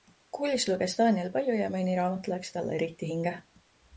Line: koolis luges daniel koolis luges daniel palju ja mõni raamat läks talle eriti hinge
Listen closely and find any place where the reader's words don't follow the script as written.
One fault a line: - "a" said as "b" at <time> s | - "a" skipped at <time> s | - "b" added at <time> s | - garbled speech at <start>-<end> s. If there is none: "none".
- "koolis luges daniel" skipped at 1.3 s